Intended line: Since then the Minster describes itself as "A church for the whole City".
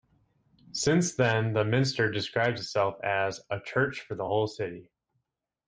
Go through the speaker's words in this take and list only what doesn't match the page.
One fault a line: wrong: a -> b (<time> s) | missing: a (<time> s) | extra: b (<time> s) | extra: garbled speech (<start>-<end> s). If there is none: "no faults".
no faults